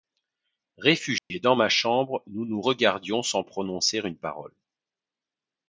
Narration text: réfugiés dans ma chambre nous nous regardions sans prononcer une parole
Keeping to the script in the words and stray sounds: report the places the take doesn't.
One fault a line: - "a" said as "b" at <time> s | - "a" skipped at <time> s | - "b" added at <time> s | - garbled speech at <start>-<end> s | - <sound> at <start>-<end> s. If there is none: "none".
- dropout at 1.2-1.3 s